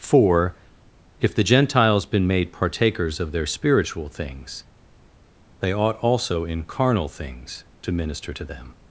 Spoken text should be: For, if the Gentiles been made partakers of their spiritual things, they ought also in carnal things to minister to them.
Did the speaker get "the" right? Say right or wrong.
right